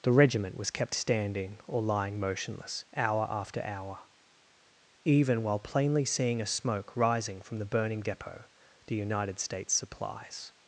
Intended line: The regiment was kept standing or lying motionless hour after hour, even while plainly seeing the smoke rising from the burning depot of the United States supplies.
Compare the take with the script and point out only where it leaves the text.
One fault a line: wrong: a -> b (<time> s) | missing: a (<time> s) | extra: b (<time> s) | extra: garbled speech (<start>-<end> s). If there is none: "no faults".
wrong: the -> a (6.4 s)
missing: of (8.4 s)